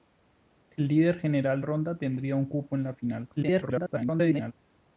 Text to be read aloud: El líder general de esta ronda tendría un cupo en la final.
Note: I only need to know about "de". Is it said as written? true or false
false